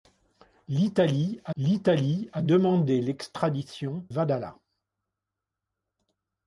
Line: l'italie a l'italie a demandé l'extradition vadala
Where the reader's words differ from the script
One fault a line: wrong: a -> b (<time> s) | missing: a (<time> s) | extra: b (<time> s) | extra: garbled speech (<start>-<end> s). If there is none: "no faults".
no faults